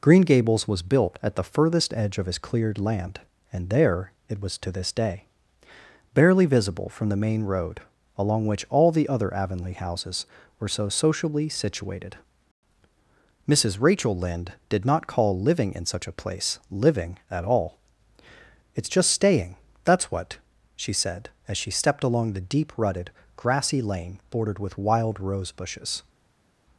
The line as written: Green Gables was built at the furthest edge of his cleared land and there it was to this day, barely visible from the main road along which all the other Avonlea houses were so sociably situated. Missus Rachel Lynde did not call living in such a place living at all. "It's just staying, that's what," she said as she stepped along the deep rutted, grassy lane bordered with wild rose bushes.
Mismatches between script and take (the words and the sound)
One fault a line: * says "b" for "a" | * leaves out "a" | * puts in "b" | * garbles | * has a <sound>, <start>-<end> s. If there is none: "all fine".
all fine